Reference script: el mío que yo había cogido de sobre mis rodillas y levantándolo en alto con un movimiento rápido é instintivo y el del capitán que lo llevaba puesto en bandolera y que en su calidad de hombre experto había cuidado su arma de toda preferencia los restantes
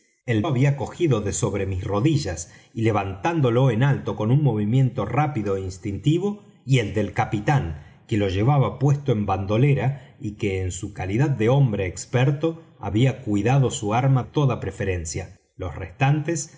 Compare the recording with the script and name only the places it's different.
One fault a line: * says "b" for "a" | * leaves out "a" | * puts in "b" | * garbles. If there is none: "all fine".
* leaves out "mío que yo"
* leaves out "de"